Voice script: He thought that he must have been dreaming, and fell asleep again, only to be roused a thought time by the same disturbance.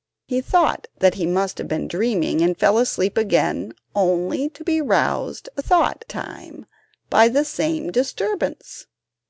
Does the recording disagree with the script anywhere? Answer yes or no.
no